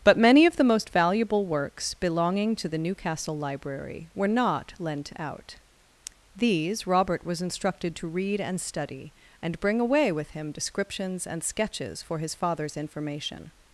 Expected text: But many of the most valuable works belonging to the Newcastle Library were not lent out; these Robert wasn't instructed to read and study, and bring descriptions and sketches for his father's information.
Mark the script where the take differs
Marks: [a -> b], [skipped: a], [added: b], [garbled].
But many of the most valuable works belonging to the Newcastle Library were not lent out; these Robert [wasn't -> was] instructed to read and study, and bring [added: away with him] descriptions and sketches for his father's information.